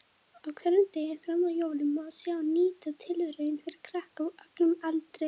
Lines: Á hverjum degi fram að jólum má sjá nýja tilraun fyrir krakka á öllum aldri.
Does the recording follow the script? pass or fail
pass